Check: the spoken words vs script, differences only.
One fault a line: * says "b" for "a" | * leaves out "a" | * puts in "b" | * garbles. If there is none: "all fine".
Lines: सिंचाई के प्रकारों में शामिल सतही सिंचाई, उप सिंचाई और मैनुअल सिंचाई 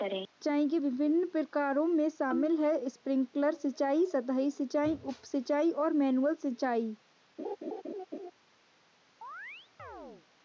* puts in "विभिन्न"
* puts in "है स्प्रिंकलर सिंचाई"